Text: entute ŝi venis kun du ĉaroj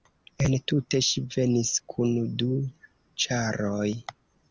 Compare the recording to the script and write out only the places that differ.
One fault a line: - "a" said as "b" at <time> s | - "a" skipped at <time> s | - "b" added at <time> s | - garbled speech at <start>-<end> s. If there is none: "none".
none